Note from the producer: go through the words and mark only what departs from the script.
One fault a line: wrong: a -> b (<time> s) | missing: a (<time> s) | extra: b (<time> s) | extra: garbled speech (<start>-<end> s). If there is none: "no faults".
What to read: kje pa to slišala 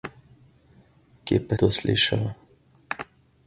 no faults